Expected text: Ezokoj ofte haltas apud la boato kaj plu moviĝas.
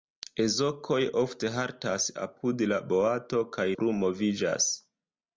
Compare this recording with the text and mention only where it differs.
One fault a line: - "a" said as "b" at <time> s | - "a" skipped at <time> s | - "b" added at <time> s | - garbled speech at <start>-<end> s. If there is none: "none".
none